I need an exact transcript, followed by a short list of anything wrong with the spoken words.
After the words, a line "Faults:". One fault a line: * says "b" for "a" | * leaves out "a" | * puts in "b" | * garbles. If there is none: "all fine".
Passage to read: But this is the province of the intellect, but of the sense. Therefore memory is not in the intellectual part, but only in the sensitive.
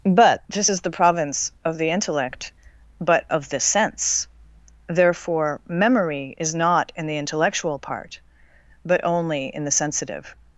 But this is the province of the intellect, but of the sense. Therefore memory is not in the intellectual part, but only in the sensitive.
Faults:
all fine